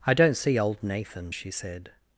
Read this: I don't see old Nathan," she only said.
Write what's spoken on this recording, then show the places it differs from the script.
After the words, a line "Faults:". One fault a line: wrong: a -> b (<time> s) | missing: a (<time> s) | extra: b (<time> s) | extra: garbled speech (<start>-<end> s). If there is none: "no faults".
I don't see old Nathan," she said.
Faults:
missing: only (1.5 s)